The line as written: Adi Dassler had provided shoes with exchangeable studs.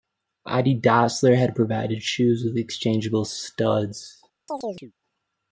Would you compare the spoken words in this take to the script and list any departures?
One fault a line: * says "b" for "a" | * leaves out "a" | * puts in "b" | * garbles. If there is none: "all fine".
all fine